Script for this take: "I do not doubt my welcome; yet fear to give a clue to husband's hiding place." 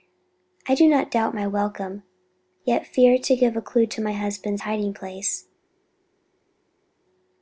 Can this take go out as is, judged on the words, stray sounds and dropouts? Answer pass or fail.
fail